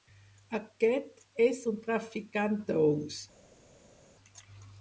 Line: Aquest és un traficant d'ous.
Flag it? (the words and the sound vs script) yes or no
no